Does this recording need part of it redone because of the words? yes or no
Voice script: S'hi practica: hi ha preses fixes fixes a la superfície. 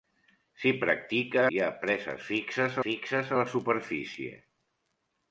no